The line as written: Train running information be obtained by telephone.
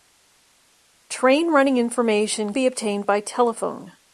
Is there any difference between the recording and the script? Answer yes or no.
no